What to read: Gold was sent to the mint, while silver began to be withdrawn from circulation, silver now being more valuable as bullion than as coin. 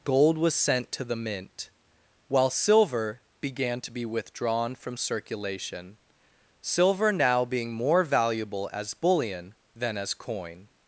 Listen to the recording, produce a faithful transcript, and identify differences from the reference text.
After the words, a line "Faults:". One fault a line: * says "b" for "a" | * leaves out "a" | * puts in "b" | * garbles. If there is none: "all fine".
Gold was sent to the mint, while silver began to be withdrawn from circulation, silver now being more valuable as bullion than as coin.
Faults:
all fine